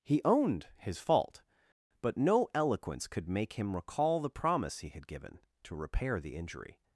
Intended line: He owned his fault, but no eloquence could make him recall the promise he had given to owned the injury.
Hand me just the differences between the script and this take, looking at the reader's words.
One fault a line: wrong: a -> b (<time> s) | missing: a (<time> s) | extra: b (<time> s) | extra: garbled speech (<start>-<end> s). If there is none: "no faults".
wrong: owned -> repair (5.8 s)